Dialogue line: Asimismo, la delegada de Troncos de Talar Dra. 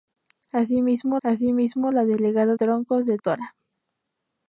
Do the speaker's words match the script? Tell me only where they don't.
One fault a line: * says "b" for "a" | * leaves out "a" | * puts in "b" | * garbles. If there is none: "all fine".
* puts in "asimismo"
* leaves out "de"
* leaves out "Talar"